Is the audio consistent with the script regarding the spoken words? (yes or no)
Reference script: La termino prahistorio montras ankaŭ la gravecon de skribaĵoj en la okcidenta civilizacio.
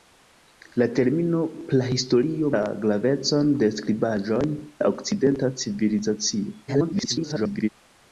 no